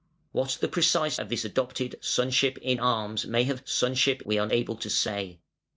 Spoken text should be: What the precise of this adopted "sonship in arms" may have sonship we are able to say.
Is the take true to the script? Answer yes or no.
yes